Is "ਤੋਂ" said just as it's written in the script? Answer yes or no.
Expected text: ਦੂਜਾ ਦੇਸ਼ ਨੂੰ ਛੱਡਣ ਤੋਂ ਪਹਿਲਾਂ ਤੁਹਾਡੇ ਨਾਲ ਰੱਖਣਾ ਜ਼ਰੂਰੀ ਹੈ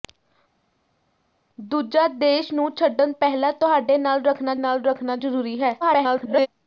no